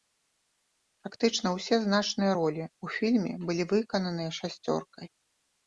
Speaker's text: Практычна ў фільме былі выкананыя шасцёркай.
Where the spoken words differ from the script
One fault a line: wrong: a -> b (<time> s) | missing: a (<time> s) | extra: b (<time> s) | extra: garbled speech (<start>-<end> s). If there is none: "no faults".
extra: ўсе значныя ролі (1.6 s)